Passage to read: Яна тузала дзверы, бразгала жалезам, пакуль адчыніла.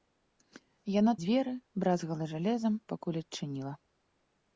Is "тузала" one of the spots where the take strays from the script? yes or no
yes